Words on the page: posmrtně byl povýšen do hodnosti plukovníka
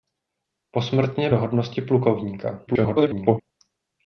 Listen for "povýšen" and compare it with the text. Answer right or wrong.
wrong